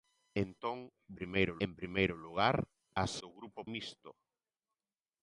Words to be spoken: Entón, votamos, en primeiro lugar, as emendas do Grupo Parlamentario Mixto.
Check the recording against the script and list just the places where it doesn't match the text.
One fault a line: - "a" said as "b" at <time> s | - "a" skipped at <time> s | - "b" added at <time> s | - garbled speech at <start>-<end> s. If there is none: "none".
- "votamos" said as "primeiro" at 1.2 s
- "emendas" skipped at 3.1 s
- "Parlamentario" skipped at 3.6 s